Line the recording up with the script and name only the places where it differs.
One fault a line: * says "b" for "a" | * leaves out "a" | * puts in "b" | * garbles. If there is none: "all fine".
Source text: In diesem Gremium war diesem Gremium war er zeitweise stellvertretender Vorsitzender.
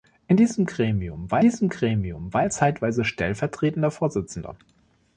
all fine